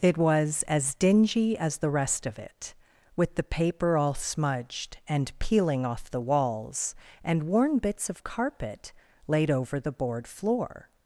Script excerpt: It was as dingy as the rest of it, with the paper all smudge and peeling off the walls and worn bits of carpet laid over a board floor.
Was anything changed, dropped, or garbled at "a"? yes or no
yes